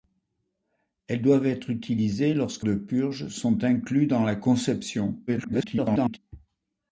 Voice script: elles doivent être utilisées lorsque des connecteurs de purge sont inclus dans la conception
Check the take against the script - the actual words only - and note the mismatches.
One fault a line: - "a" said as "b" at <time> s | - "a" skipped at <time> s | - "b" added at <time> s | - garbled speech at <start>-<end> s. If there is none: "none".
- "des connecteurs" skipped at 2.7 s
- garbled speech at 5.3-6.2 s